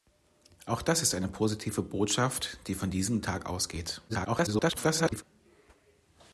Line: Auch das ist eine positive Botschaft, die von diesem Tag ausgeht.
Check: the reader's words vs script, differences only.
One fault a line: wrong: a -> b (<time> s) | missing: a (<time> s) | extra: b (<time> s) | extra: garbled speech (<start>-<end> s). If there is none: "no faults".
extra: garbled speech (4.1-5.2 s)